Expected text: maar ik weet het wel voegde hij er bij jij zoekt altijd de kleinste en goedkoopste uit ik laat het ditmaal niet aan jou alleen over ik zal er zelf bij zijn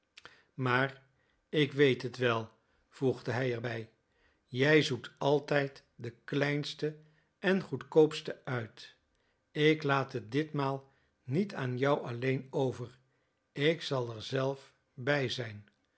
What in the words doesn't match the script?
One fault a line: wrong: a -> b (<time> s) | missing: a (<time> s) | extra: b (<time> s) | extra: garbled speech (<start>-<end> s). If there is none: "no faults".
no faults